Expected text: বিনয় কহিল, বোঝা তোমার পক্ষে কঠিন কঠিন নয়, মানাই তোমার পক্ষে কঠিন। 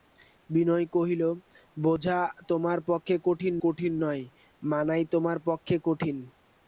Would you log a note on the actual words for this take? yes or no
no